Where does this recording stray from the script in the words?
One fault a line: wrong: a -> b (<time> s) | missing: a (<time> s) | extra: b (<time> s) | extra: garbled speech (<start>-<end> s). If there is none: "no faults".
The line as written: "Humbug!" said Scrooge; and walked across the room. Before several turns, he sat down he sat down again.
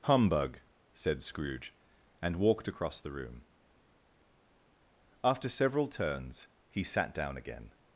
wrong: Before -> After (5.2 s)
missing: he sat down (7.4 s)